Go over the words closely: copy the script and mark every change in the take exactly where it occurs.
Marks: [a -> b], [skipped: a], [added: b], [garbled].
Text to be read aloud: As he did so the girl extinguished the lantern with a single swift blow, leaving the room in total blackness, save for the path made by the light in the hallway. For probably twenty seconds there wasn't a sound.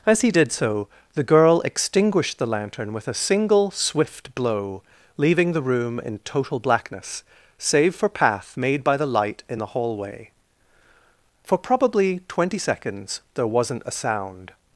As he did so the girl extinguished the lantern with a single swift blow, leaving the room in total blackness, save for [skipped: the] path made by the light in the hallway. For probably twenty seconds there wasn't a sound.